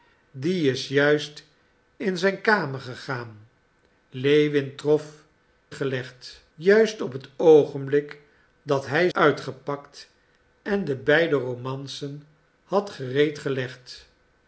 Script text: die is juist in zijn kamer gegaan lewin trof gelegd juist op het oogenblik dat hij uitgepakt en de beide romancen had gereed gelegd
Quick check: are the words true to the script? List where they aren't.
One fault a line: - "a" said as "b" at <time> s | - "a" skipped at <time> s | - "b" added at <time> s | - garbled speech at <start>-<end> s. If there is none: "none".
none